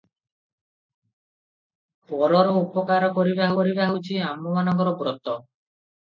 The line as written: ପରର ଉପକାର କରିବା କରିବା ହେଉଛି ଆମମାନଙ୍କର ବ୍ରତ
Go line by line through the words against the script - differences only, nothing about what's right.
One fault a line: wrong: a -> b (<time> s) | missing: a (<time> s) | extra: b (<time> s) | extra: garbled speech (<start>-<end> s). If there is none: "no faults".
no faults